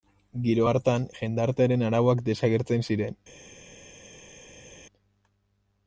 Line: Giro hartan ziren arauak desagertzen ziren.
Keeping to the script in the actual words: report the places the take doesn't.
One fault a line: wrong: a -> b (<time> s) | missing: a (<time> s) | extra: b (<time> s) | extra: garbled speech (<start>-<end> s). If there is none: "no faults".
wrong: ziren -> jendartearen (1.2 s)